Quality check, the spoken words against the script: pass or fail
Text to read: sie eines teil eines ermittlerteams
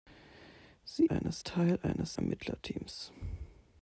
pass